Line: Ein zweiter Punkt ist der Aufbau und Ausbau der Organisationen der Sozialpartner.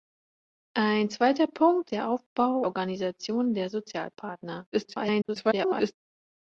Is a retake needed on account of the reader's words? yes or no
yes